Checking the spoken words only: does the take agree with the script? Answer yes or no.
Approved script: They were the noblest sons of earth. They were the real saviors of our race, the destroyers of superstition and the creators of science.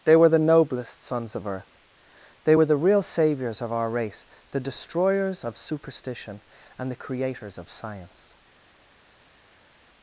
yes